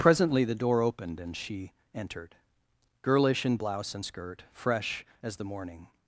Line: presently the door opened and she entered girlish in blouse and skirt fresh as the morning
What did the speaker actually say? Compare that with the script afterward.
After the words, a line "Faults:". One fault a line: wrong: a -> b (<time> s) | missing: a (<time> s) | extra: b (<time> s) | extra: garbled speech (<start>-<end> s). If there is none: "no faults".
presently the door opened and she entered girlish in blouse and skirt fresh as the morning
Faults:
no faults